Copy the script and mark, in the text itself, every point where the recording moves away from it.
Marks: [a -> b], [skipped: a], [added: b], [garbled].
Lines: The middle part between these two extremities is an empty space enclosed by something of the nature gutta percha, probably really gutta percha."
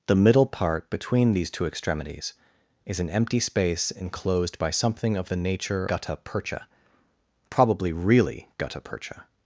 The middle part between these two extremities is an empty space enclosed by something of the nature gutta percha, probably really gutta percha."